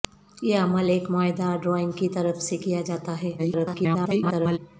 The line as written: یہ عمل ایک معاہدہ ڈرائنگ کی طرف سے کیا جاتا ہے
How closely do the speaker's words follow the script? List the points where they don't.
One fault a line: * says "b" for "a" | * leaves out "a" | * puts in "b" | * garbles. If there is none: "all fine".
* garbles